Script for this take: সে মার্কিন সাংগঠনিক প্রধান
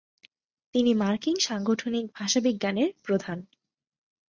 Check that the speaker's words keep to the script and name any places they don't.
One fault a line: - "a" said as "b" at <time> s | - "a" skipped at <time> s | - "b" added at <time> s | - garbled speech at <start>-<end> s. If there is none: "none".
- "সে" said as "তিনি" at 0.8 s
- "ভাষাবিজ্ঞানের" added at 2.2 s